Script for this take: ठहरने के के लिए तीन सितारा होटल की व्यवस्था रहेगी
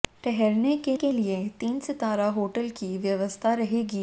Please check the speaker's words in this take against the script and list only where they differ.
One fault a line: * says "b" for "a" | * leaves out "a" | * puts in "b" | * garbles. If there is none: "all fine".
all fine